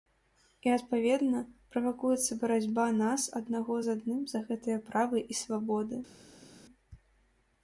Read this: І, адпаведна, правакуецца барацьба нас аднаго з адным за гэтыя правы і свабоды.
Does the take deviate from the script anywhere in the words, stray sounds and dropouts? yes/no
no